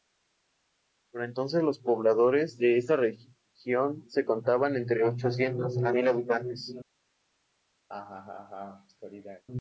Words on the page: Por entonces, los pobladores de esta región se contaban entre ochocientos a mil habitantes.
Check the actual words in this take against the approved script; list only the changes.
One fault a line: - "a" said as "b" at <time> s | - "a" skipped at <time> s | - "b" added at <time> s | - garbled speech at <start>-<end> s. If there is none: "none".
none